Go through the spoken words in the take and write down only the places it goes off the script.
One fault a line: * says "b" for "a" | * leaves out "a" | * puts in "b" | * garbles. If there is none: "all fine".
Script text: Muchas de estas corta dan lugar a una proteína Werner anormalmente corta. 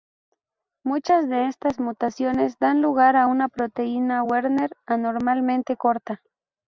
* says "mutaciones" for "corta"